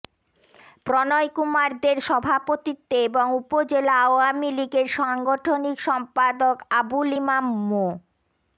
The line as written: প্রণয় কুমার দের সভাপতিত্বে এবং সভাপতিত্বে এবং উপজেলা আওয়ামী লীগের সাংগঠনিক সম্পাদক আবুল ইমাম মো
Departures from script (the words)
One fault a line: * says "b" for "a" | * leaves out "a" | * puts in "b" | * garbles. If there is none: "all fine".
* leaves out "সভাপতিত্বে এবং"